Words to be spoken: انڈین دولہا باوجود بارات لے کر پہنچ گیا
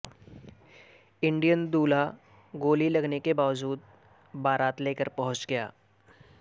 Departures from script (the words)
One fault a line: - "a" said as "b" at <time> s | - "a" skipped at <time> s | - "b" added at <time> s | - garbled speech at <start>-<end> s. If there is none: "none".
- "گولی لگنے کے" added at 2.5 s